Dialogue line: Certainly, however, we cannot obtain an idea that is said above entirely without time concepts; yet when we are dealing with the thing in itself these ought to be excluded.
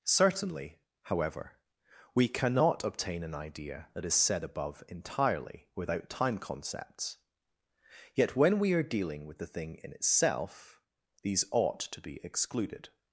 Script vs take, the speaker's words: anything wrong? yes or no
no